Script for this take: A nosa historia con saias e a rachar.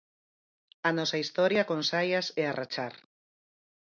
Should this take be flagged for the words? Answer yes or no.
no